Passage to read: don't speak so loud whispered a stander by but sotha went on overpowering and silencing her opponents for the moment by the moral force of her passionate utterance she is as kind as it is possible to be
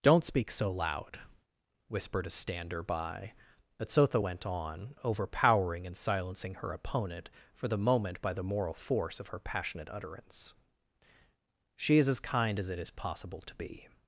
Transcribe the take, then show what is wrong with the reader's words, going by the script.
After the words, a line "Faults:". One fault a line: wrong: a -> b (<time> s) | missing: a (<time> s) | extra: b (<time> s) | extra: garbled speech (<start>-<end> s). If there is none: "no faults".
don't speak so loud whispered a stander by but sotha went on overpowering and silencing her opponent for the moment by the moral force of her passionate utterance she is as kind as it is possible to be
Faults:
wrong: opponents -> opponent (6.7 s)